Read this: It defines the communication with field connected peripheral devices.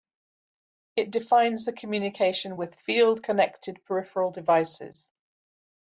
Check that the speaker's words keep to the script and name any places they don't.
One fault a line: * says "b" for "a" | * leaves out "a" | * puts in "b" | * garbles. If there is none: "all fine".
all fine